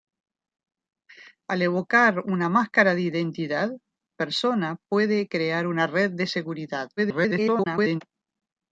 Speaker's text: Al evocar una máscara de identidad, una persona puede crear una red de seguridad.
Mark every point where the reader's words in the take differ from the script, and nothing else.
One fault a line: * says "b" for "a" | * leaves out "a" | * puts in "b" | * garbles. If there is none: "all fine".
* leaves out "una"
* garbles